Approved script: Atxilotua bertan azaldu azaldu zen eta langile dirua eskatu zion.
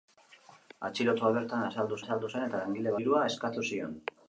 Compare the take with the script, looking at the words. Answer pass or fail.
pass